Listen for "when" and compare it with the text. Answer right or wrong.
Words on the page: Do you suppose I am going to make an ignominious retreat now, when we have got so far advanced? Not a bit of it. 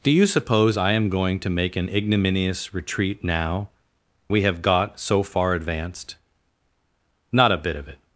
wrong